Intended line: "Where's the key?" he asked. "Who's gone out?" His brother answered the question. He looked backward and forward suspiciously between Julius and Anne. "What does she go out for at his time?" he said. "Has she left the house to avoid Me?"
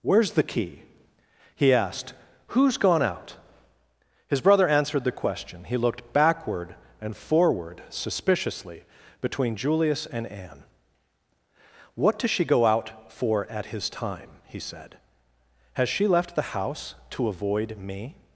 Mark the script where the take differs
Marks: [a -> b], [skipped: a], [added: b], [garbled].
"Where's the key?" he asked. "Who's gone out?" His brother answered the question. He looked backward and forward suspiciously between Julius and Anne. "What does she go out for at his time?" he said. "Has she left the house to avoid Me?"